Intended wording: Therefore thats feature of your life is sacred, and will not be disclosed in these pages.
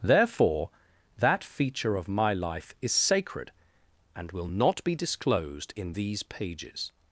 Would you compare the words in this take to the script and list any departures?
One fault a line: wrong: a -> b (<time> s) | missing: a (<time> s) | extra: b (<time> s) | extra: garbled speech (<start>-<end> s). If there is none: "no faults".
wrong: thats -> that (1.2 s)
wrong: your -> my (2.1 s)